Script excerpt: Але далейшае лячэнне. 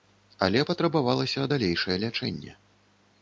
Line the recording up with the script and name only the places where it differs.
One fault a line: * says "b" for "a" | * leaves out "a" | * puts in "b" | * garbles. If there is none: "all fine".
* puts in "патрабавалася"